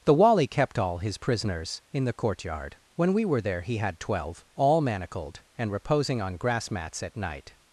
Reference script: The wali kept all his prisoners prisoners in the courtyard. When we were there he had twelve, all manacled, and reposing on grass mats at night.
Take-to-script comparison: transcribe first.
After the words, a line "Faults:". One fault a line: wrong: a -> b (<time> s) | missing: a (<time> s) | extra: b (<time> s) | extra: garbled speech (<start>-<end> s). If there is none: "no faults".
The wali kept all his prisoners in the courtyard. When we were there he had twelve, all manacled, and reposing on grass mats at night.
Faults:
missing: prisoners (1.8 s)